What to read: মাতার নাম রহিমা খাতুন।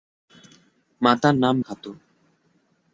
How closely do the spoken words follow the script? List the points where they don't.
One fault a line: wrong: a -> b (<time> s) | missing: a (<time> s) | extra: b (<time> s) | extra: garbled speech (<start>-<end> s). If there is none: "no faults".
missing: রহিমা (1.5 s)